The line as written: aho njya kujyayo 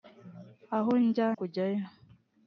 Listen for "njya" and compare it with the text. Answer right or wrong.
right